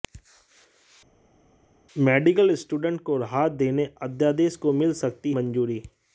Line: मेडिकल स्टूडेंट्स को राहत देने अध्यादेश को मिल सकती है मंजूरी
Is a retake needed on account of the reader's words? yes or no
yes